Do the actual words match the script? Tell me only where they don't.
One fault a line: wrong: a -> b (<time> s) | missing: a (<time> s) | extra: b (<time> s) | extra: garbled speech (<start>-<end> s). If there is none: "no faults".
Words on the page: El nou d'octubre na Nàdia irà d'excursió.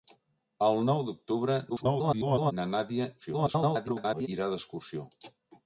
extra: garbled speech (1.7-2.5 s)
extra: garbled speech (3.2-4.3 s)